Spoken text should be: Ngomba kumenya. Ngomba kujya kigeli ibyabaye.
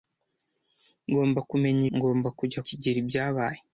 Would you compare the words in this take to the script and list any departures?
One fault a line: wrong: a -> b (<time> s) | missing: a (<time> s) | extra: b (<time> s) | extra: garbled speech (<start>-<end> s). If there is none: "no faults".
no faults